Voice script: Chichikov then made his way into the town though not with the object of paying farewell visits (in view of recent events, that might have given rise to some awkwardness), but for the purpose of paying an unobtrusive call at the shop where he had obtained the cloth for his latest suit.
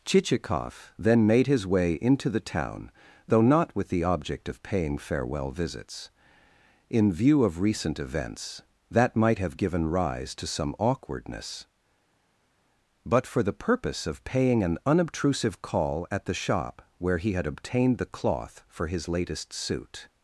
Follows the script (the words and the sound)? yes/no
yes